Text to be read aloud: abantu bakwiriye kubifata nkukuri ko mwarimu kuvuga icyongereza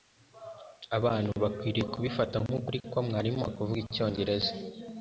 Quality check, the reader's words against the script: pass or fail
pass